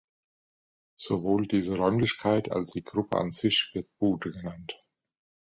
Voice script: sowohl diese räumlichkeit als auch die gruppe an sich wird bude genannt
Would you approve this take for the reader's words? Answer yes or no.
no